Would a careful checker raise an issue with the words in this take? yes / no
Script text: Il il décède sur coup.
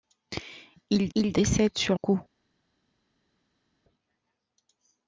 no